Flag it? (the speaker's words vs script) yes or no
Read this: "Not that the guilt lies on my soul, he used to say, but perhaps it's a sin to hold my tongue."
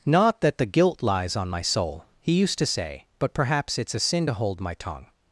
no